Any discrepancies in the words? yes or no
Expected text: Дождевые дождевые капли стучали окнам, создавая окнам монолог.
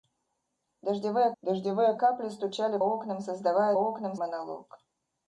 no